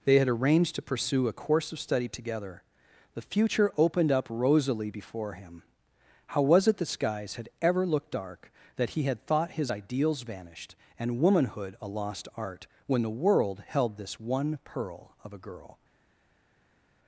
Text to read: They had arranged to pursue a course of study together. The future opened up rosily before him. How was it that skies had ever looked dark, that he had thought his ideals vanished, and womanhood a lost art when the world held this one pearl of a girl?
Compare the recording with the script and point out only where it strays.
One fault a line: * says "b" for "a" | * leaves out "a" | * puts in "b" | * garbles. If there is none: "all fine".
* says "the" for "that"